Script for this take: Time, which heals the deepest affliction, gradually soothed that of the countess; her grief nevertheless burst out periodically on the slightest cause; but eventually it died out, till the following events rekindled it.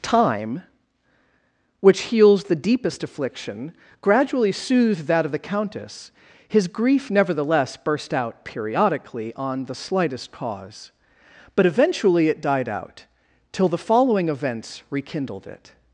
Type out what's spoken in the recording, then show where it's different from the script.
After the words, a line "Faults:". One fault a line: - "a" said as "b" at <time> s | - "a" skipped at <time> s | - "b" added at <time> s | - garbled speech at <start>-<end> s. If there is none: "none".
Time, which heals the deepest affliction, gradually soothed that of the countess; his grief nevertheless burst out periodically on the slightest cause; but eventually it died out, till the following events rekindled it.
Faults:
- "her" said as "his" at 6.5 s